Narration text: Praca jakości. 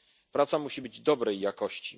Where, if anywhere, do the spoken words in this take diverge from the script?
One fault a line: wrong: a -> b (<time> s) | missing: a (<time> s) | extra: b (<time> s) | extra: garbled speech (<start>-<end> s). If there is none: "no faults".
extra: musi być dobrej (0.6 s)